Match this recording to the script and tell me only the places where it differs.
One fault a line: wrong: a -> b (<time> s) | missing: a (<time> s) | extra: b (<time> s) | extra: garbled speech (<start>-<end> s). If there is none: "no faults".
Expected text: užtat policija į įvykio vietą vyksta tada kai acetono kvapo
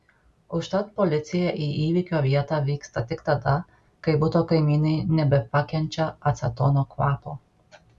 extra: tik (3.1 s)
extra: buto kaimynai nebepakenčia (4.3 s)